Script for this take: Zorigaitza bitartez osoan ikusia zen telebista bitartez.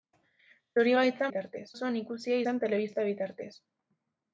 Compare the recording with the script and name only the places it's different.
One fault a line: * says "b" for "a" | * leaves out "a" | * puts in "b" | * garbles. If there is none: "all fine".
all fine